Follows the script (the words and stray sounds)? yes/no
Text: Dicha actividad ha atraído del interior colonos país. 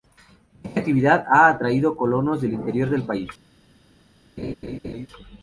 no